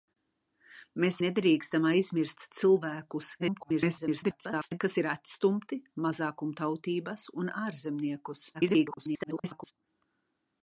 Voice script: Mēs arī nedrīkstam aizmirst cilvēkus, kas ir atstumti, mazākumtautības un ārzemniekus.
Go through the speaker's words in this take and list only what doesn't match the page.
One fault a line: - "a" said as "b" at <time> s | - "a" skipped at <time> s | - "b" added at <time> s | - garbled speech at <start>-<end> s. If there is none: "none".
- "arī" skipped at 1.2 s
- garbled speech at 3.4-4.8 s
- garbled speech at 8.5-9.7 s